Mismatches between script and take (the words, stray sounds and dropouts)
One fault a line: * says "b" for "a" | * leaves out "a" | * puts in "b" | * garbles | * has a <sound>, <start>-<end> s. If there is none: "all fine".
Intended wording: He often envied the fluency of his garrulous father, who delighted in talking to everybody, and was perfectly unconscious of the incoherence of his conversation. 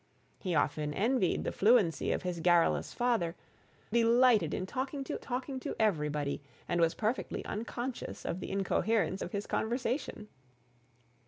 * leaves out "who"
* puts in "talking to"